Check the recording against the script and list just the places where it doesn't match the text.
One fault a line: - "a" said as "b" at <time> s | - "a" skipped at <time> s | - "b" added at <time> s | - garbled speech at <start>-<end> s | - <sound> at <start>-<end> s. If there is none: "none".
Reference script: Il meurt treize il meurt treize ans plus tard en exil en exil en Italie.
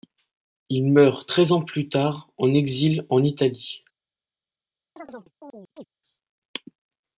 - "il meurt treize" skipped at 1.5 s
- "exil en" skipped at 3.2 s
- chirp at 5.0-5.8 s